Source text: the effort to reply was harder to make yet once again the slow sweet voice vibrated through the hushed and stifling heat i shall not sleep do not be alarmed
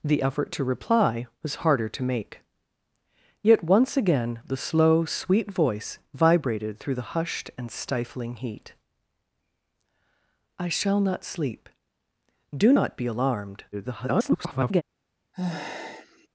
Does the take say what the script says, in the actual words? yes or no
no